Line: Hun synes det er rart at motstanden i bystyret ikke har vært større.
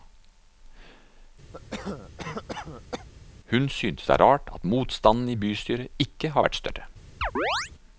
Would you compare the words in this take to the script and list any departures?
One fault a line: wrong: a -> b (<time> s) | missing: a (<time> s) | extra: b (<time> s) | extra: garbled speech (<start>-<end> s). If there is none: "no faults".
no faults